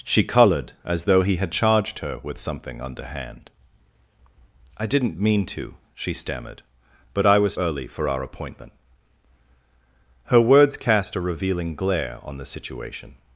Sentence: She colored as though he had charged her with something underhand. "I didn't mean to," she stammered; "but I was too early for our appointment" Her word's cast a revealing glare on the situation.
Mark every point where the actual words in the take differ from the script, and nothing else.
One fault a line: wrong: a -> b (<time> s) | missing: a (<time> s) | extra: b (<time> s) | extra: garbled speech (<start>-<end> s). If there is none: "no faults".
missing: too (7.5 s)